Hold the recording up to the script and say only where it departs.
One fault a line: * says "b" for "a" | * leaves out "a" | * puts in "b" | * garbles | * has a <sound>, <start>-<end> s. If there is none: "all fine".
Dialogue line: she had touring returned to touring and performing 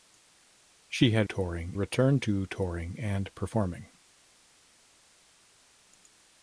all fine